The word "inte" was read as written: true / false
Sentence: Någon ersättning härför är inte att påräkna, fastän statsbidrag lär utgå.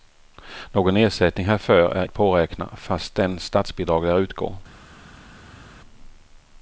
false